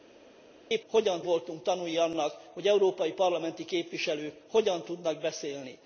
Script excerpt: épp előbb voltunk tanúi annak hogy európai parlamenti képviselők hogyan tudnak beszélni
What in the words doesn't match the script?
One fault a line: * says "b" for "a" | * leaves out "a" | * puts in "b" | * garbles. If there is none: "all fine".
* says "hogyan" for "előbb"